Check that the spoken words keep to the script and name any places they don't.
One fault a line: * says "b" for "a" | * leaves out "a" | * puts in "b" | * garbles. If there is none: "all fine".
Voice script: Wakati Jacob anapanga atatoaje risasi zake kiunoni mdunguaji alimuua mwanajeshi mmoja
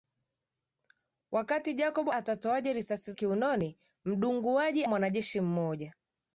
* leaves out "anapanga"
* leaves out "zake"
* leaves out "alimuua"